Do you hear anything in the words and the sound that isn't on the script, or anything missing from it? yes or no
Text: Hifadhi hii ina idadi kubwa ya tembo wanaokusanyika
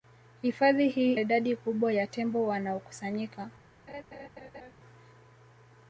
yes